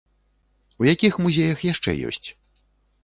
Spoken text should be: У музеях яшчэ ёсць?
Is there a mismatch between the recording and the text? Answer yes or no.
yes